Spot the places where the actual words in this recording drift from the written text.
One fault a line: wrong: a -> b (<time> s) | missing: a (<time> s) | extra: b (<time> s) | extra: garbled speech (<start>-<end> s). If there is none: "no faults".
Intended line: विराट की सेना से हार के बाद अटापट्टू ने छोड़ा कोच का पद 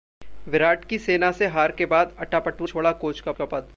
missing: ने (2.7 s)
extra: का (3.3 s)